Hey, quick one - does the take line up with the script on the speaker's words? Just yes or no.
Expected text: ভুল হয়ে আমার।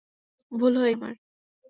yes